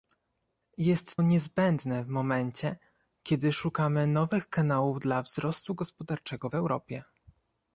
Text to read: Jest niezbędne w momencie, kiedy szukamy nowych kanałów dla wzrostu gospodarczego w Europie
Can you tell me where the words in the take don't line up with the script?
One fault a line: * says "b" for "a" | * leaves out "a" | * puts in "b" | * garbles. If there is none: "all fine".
all fine